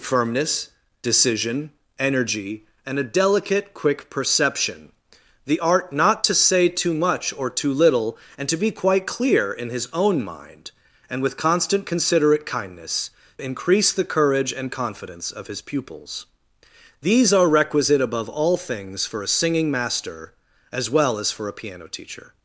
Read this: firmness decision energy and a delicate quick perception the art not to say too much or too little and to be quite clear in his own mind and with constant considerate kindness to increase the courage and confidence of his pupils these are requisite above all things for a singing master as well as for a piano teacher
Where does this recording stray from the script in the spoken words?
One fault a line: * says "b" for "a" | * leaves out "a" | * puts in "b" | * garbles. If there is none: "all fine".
* leaves out "to"